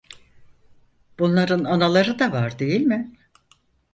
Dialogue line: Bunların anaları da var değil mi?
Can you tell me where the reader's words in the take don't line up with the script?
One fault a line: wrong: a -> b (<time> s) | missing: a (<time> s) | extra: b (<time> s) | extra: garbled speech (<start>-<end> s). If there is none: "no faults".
no faults